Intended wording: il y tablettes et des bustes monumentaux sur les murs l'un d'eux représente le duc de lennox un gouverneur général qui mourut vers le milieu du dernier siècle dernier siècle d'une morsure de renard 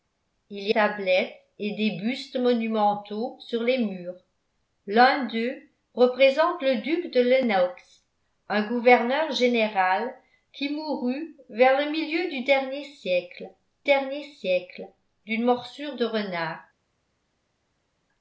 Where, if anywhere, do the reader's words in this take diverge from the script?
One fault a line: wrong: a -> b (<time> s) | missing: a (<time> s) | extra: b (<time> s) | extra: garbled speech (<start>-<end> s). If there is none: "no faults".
no faults